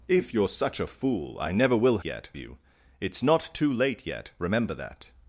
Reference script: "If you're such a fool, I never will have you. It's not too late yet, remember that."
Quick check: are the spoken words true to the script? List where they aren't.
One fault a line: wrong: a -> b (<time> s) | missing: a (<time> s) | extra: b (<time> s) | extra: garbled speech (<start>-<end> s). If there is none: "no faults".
wrong: have -> yet (2.0 s)